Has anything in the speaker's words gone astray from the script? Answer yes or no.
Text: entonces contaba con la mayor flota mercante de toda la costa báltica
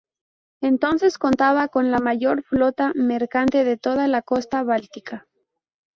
no